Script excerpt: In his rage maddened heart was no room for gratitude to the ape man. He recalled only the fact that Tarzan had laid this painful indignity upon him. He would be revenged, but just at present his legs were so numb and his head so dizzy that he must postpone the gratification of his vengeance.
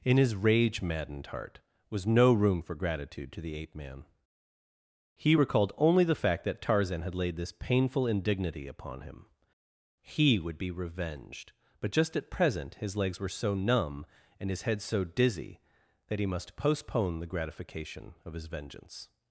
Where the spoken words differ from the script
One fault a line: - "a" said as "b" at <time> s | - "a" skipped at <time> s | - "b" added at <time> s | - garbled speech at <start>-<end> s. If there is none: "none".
none